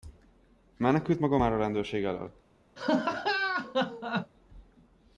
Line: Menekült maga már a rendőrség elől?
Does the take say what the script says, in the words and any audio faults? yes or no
no